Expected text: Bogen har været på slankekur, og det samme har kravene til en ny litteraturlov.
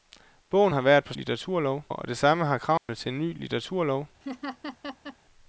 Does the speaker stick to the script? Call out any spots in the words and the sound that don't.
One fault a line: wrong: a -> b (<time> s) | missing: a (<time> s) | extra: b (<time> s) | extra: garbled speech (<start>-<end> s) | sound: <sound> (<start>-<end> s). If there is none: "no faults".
wrong: slankekur -> litteraturlov (1.2 s)
sound: dropout (2.8-2.9 s)
sound: laugh (4.2-5.2 s)